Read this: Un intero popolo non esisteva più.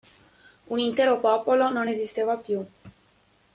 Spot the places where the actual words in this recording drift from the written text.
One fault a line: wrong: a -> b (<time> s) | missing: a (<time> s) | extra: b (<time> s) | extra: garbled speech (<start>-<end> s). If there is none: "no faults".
no faults